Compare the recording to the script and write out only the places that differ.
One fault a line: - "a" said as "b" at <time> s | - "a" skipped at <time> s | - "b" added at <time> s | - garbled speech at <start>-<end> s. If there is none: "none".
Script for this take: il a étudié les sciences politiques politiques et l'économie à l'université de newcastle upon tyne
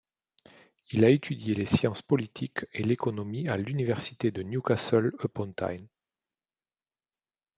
- "politiques" skipped at 2.6 s